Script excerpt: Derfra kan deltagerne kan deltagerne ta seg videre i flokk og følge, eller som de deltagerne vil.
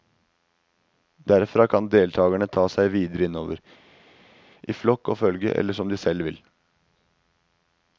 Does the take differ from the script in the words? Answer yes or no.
yes